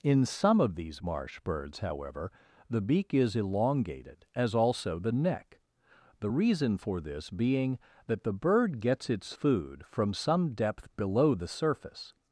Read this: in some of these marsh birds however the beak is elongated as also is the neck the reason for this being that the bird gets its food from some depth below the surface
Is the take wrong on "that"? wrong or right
right